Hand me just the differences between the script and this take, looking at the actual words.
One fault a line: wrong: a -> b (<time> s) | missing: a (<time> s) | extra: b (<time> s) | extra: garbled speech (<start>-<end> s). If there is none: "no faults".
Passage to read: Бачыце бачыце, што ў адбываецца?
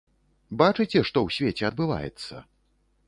missing: бачыце (1.0 s)
extra: свеце (1.4 s)